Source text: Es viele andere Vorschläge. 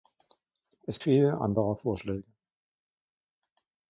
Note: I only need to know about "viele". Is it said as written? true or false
true